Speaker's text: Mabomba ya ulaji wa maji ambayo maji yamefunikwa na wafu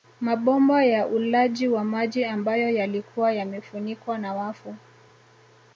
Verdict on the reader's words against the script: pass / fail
fail